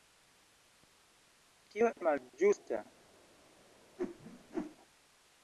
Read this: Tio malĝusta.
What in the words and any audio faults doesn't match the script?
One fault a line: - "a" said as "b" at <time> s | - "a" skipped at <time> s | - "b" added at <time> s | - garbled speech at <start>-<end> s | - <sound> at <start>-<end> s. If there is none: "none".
- whoosh at 4.0-4.8 s